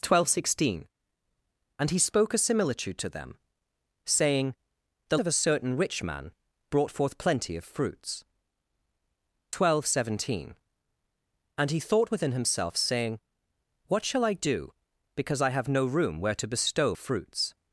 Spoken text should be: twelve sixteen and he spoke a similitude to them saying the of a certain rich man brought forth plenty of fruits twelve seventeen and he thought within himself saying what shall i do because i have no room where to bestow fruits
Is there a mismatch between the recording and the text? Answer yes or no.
no